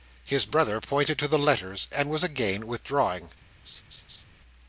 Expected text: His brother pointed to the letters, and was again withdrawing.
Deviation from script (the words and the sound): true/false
true